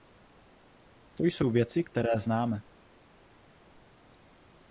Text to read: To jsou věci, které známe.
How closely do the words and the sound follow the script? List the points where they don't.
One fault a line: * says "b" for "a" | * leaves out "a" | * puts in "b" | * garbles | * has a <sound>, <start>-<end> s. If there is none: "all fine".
all fine